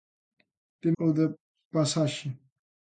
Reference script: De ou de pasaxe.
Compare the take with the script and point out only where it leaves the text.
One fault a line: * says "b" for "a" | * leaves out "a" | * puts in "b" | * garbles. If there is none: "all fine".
all fine